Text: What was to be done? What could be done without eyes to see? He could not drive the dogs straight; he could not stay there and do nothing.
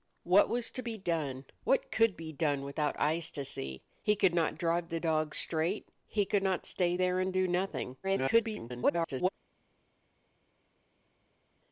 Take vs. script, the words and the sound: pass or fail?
fail